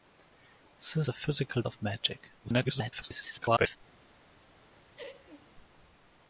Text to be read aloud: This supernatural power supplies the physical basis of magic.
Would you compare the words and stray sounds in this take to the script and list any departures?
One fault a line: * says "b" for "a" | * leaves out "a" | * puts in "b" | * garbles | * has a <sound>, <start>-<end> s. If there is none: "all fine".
* leaves out "supernatural power supplies"
* leaves out "basis"
* garbles
* has a laugh, 5.0-5.5 s